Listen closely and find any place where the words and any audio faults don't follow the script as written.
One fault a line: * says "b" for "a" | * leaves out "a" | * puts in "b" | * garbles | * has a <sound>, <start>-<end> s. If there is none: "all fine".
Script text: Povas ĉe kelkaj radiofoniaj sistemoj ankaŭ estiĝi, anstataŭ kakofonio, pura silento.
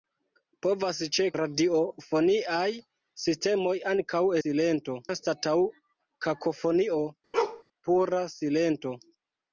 * leaves out "kelkaj"
* says "silento" for "estiĝi"
* has a bark, 7.3-7.6 s